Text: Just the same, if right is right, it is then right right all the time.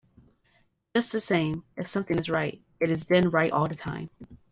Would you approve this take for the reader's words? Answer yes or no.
no